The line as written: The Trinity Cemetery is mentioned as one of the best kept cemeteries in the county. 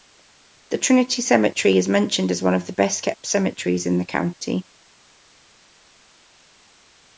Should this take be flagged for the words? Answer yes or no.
no